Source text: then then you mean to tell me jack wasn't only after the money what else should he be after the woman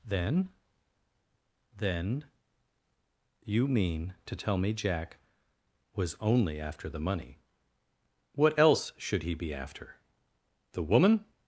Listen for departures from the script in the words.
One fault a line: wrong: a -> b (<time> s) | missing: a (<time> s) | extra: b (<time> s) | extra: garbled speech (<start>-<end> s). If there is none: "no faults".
wrong: wasn't -> was (6.0 s)